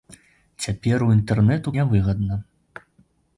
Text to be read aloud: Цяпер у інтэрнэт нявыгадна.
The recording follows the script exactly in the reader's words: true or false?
true